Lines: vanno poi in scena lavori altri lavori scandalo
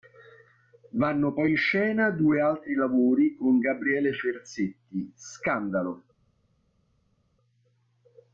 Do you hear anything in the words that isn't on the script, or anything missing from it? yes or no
yes